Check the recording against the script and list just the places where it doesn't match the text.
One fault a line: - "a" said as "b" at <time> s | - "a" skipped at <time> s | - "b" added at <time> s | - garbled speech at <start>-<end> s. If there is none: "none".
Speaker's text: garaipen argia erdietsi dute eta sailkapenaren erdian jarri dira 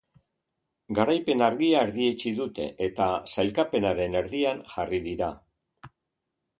none